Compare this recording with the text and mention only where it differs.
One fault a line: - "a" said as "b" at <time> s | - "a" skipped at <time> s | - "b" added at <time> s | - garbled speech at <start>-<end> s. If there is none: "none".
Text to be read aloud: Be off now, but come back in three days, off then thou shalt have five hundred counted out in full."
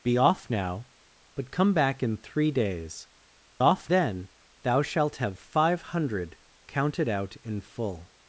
none